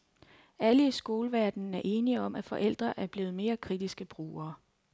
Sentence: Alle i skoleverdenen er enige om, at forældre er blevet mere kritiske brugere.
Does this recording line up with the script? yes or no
yes